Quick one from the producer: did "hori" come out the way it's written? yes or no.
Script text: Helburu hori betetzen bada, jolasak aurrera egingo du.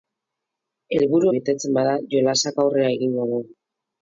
no